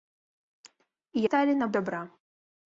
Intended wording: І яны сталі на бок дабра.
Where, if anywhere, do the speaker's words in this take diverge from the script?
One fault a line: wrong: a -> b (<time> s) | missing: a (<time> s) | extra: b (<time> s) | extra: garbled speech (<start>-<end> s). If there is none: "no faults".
missing: яны (1.2 s)
missing: бок (1.7 s)